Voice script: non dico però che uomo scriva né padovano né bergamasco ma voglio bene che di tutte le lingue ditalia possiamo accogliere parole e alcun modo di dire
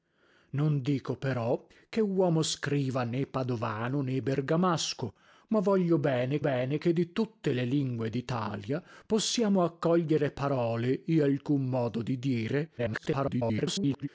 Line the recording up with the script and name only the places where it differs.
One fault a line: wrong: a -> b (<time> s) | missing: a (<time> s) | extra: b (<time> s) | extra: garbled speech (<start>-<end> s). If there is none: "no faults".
extra: bene (6.4 s)
extra: garbled speech (12.8-14.1 s)